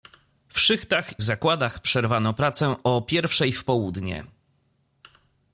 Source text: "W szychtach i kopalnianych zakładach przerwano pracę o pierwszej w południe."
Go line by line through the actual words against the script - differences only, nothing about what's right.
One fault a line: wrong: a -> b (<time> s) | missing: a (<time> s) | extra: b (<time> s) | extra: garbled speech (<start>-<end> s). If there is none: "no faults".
missing: i kopalnianych (1.2 s)